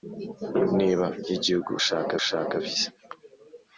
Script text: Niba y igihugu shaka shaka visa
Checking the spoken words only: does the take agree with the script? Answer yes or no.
yes